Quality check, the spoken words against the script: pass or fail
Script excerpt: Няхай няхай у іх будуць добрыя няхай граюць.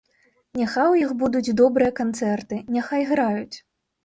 fail